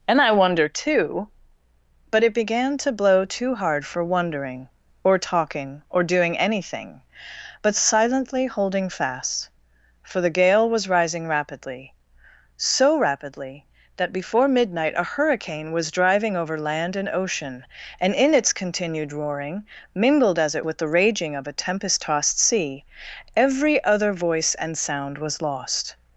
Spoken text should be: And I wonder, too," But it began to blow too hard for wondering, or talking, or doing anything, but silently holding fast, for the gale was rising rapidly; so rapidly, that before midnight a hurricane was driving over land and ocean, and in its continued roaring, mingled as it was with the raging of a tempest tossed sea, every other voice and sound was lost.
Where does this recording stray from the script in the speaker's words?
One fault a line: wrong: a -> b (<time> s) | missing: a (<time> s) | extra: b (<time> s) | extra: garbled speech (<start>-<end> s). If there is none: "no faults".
missing: was (20.7 s)